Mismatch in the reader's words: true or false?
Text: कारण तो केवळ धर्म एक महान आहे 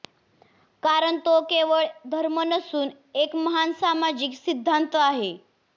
true